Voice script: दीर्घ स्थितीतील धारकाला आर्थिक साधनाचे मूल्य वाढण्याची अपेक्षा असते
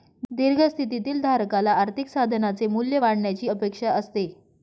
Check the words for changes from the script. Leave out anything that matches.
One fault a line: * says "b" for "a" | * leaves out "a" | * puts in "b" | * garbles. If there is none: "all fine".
all fine